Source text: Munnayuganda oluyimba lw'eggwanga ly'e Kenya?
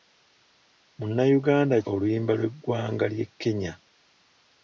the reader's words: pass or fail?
pass